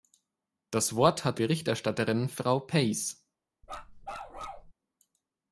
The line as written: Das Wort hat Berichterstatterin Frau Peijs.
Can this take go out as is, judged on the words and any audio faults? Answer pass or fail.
fail